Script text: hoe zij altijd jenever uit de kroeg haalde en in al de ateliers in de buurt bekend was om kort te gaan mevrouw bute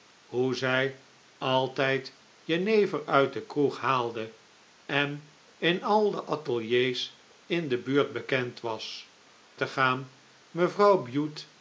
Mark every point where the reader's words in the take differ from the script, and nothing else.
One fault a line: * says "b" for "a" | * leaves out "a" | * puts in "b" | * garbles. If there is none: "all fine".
* leaves out "om kort"